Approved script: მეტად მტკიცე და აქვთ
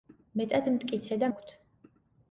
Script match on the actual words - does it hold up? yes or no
yes